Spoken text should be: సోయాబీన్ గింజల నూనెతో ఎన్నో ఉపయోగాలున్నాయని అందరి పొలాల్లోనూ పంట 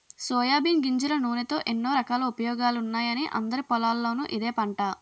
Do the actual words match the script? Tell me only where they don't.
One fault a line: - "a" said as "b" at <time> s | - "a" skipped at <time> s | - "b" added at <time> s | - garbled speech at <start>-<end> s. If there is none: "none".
- "రకాల" added at 1.9 s
- "ఇదే" added at 4.3 s